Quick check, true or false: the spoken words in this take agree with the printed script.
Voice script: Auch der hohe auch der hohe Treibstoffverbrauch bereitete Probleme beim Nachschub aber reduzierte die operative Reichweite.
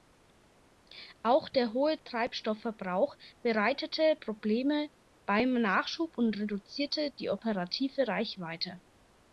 false